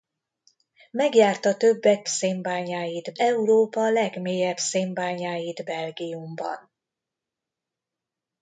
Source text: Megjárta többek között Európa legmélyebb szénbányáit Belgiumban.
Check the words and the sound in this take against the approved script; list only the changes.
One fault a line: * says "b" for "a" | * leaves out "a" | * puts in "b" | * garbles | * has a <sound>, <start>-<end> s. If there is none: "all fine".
* says "szénbányáit" for "között"